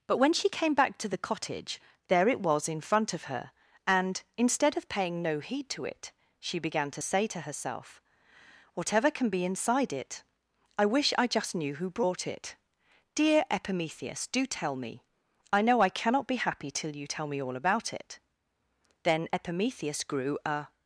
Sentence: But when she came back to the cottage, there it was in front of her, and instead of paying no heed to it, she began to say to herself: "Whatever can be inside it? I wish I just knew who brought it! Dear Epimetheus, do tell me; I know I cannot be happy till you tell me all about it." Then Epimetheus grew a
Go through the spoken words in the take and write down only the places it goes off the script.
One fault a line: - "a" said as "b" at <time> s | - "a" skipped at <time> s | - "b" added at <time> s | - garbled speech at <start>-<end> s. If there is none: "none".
none